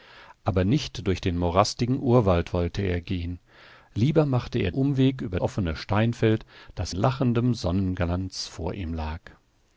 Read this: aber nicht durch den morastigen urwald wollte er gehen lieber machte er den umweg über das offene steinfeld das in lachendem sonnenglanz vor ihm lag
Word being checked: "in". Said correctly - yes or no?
no